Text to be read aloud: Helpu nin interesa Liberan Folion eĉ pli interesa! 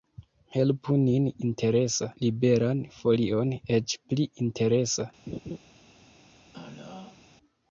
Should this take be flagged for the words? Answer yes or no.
no